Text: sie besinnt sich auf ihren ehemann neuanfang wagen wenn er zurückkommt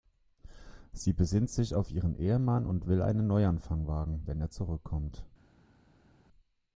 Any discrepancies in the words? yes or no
yes